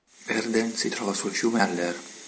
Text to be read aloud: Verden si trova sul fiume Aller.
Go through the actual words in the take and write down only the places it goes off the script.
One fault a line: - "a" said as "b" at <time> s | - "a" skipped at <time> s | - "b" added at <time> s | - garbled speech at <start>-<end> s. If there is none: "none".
none